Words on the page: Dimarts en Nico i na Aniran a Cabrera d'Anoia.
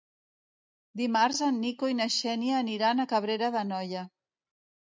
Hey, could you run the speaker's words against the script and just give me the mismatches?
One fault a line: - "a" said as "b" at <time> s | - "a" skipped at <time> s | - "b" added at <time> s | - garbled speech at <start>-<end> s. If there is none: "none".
- "Xènia" added at 2.2 s